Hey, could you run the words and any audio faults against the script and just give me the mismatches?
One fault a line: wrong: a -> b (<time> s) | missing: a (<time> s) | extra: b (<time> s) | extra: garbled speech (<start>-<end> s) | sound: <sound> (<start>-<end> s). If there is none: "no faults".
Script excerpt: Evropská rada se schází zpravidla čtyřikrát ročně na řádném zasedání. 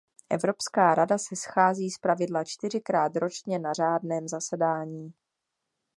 no faults